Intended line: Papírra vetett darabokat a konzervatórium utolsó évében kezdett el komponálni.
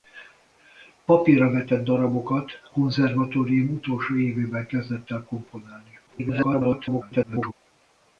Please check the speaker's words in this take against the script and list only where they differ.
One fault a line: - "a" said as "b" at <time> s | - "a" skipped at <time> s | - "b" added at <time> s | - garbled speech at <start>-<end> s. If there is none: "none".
- "a" skipped at 2.7 s
- garbled speech at 6.1-7.5 s